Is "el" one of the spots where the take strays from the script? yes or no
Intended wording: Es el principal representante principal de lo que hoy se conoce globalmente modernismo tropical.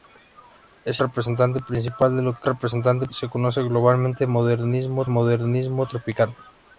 yes